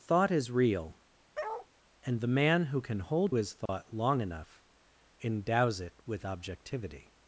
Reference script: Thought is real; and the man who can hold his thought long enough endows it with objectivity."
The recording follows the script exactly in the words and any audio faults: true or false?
false